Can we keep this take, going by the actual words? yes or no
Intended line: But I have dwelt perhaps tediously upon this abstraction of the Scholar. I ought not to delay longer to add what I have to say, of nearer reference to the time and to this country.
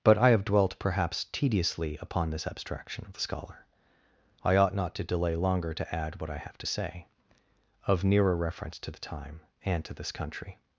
yes